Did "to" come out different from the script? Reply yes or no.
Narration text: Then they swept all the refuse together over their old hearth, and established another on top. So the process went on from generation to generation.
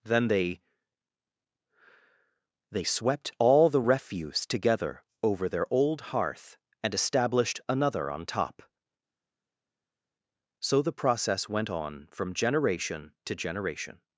no